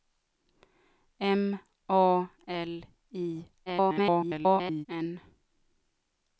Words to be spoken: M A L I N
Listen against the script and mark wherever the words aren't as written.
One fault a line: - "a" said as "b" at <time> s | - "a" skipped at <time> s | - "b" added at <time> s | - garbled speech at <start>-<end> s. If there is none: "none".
- garbled speech at 3.7-4.9 s